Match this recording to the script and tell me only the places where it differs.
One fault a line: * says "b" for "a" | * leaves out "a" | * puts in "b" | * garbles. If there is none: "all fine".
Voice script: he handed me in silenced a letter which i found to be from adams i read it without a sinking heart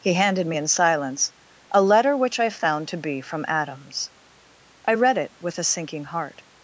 * says "silence" for "silenced"
* says "with" for "without"